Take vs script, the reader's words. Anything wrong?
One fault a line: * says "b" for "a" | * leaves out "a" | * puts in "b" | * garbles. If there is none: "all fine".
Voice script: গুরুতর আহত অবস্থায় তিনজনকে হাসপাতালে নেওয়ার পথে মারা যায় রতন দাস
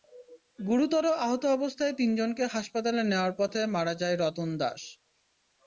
all fine